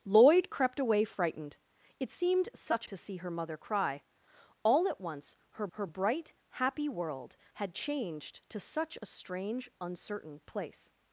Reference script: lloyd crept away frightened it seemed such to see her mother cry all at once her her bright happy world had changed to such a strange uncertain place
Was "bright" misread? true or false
false